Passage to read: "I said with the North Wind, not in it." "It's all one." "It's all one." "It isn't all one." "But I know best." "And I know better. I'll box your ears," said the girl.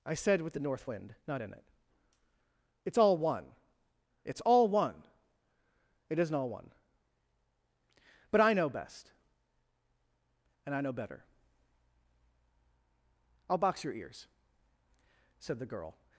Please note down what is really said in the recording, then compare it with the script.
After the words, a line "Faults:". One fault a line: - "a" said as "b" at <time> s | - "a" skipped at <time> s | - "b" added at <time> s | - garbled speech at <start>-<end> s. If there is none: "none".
"I said with the North Wind, not in it." "It's all one." "It's all one." "It isn't all one." "But I know best." "And I know better. I'll box your ears," said the girl.
Faults:
none